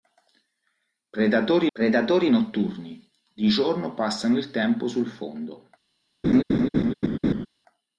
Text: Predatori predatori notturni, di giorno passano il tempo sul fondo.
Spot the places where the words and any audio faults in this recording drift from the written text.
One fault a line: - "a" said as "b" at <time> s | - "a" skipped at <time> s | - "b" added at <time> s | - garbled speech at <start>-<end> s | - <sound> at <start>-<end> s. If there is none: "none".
- laugh at 6.2-7.5 s